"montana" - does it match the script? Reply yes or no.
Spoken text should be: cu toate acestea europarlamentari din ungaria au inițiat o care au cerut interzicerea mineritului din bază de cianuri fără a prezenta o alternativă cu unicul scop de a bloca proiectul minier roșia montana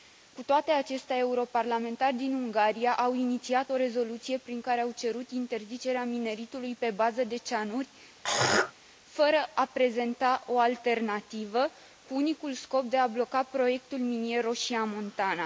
yes